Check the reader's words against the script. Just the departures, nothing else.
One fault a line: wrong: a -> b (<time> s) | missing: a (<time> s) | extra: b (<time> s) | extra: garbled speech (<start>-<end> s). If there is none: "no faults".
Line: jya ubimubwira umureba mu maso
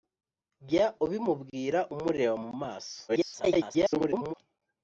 extra: garbled speech (3.1-4.3 s)